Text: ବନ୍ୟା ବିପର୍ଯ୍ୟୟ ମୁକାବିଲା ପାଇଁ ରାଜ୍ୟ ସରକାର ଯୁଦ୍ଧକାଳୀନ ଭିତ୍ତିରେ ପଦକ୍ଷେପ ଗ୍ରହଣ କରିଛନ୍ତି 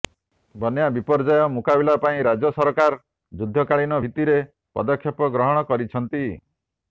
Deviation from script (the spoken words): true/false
false